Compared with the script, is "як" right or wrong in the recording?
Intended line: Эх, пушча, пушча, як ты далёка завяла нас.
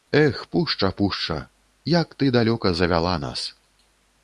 right